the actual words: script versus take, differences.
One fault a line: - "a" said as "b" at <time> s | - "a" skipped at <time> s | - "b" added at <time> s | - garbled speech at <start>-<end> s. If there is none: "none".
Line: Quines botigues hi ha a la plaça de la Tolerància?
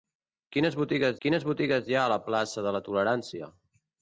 - "quines botigues" added at 1.2 s